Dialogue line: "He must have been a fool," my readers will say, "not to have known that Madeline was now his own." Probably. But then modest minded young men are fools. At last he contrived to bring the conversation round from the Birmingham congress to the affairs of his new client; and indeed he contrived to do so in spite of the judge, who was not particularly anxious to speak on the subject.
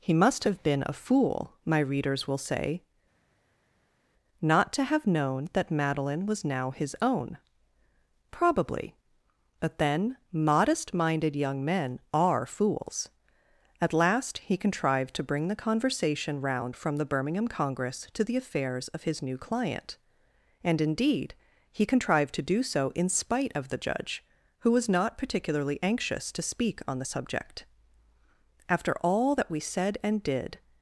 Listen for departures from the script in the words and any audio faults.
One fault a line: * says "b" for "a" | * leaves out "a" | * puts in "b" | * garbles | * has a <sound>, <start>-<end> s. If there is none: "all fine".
* puts in "After all that we said and did"